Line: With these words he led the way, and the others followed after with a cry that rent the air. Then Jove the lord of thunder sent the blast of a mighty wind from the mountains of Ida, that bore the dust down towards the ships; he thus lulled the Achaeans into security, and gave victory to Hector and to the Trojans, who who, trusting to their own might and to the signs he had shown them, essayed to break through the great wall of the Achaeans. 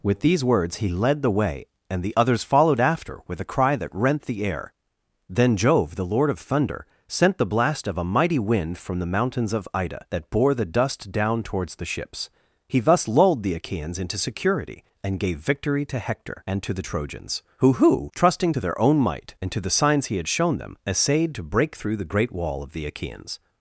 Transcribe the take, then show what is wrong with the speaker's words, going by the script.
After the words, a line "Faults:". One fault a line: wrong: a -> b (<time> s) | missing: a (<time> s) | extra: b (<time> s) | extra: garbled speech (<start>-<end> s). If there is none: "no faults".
With these words he led the way, and the others followed after with a cry that rent the air. Then Jove the lord of thunder sent the blast of a mighty wind from the mountains of Ida, that bore the dust down towards the ships; he thus lulled the Achaeans into security, and gave victory to Hector and to the Trojans, who who, trusting to their own might and to the signs he had shown them, essayed to break through the great wall of the Achaeans.
Faults:
no faults